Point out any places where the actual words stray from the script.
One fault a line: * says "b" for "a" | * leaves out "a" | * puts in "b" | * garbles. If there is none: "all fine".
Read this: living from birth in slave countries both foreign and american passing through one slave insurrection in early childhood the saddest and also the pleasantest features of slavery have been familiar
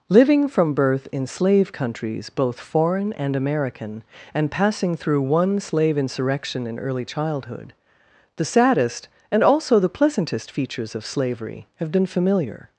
* puts in "and"